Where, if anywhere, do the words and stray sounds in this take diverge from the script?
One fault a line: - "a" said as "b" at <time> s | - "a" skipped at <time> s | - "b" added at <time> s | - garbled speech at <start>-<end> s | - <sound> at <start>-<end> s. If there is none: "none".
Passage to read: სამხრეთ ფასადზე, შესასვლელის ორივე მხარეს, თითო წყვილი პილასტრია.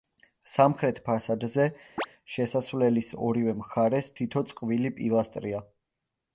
- chirp at 2.0-2.1 s